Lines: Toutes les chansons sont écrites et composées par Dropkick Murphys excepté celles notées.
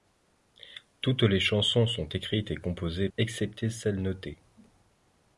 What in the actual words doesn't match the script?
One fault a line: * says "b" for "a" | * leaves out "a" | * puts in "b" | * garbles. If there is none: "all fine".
* leaves out "par Dropkick Murphys"